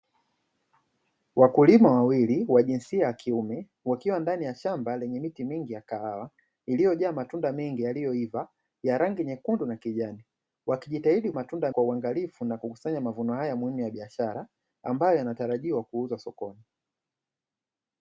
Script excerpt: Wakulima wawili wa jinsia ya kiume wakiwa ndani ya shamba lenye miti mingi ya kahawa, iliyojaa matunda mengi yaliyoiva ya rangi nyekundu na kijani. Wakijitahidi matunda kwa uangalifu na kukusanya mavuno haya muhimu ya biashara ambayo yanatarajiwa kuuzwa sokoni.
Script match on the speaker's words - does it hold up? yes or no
yes